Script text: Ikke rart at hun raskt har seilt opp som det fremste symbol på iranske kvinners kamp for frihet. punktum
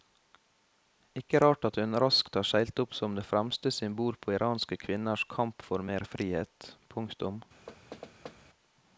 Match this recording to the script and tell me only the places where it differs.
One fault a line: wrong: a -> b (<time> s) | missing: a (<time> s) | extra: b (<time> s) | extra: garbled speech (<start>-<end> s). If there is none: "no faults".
extra: mer (5.9 s)